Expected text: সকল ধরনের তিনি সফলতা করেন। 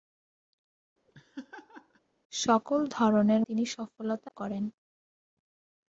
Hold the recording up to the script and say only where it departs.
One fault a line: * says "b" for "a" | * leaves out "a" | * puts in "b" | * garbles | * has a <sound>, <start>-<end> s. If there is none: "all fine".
* has a laugh, 1.1-2.0 s